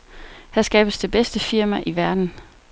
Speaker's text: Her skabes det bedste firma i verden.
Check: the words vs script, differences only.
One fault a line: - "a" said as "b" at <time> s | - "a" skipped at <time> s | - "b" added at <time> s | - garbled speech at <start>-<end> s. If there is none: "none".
none